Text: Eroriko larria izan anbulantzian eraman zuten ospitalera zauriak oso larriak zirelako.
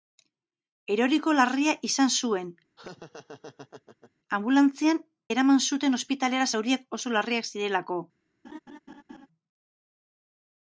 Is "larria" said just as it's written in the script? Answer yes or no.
yes